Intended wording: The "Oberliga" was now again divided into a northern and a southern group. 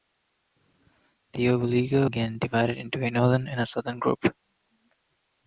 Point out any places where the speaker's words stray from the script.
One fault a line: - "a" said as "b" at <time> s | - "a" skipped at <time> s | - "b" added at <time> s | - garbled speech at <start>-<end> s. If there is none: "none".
- "was now" skipped at 2.1 s